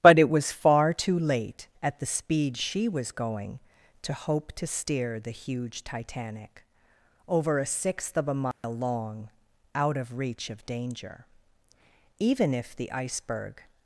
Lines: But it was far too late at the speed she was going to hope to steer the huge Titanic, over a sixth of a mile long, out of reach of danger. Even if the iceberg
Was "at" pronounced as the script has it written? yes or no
yes